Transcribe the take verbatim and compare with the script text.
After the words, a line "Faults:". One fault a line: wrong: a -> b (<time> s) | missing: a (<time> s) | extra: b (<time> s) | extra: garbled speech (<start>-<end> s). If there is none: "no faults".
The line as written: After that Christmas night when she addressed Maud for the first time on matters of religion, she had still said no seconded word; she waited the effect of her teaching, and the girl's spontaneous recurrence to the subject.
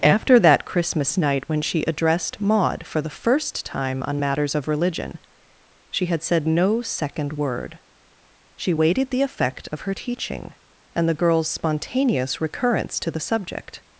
After that Christmas night when she addressed Maud for the first time on matters of religion, she had said no second word; she waited the effect of her teaching, and the girl's spontaneous recurrence to the subject.
Faults:
missing: still (6.2 s)
wrong: seconded -> second (6.8 s)